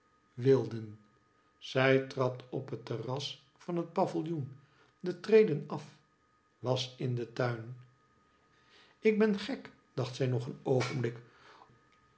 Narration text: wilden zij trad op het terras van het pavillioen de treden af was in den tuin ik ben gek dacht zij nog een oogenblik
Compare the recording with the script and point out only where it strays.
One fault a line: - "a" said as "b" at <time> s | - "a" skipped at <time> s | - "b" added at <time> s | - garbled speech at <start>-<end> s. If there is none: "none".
none